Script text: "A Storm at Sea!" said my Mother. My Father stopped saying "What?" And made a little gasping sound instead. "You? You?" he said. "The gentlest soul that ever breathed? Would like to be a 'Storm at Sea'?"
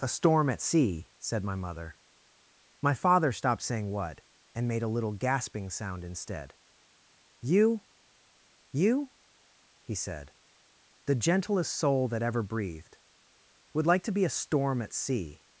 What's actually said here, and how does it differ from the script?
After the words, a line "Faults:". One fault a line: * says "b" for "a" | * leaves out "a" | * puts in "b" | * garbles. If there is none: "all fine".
"A Storm at Sea!" said my Mother. My Father stopped saying "What?" And made a little gasping sound instead. "You? You?" he said. "The gentlest soul that ever breathed? Would like to be a 'Storm at Sea'?"
Faults:
all fine